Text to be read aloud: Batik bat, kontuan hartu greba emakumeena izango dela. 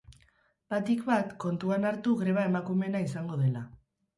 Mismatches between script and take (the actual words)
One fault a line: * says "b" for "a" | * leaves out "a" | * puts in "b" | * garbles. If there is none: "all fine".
all fine